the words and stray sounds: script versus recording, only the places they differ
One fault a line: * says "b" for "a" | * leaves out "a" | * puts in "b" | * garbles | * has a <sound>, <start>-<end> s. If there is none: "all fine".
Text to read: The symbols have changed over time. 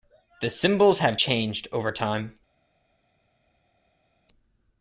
all fine